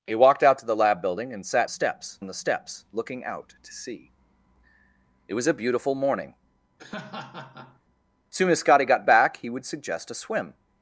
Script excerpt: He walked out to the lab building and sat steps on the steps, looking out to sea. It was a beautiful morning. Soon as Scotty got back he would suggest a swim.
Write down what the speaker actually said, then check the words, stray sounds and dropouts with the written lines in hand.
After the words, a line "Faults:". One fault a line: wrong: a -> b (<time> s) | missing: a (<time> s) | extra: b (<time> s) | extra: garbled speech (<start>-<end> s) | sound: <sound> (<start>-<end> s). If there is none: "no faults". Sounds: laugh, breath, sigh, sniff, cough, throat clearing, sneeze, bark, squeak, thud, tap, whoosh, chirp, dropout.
He walked out to the lab building and sat steps on the steps, looking out to sea. It was a beautiful morning. Soon as Scotty got back he would suggest a swim.
Faults:
sound: laugh (6.8-7.8 s)